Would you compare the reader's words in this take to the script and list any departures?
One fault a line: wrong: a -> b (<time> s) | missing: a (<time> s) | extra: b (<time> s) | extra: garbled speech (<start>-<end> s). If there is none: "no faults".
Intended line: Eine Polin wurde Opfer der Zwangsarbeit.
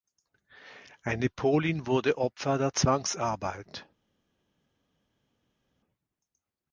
no faults